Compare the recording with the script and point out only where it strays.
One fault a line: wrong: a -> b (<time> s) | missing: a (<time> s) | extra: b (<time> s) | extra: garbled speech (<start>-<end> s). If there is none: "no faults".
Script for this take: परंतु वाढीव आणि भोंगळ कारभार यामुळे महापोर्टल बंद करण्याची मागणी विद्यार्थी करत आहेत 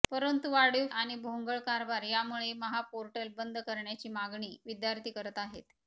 no faults